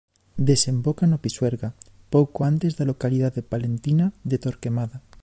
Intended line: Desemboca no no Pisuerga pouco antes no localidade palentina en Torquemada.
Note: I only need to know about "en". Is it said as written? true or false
false